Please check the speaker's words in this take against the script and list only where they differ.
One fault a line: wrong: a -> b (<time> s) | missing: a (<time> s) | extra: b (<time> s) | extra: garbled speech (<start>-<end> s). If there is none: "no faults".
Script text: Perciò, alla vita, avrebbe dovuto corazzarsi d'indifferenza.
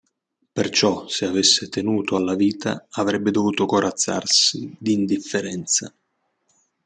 extra: se avesse tenuto (1.1 s)